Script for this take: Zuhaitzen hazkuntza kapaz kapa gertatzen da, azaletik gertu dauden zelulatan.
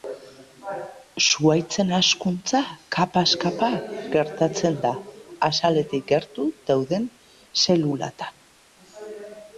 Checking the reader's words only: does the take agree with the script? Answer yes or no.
yes